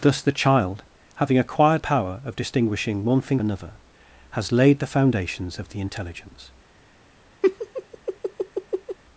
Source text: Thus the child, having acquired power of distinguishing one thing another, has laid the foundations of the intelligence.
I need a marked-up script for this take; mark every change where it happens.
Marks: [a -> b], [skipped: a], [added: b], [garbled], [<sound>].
Thus the child, having acquired power of distinguishing one thing another, has laid the foundations of the intelligence. [laugh]